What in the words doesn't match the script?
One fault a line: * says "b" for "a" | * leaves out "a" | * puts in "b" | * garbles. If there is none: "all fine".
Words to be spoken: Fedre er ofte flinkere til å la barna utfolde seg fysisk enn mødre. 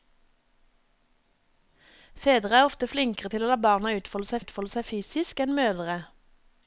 * puts in "utfolde seg"